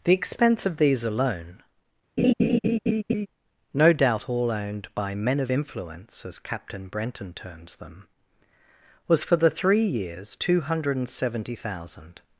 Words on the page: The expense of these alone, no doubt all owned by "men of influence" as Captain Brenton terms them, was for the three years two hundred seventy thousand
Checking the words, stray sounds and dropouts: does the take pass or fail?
fail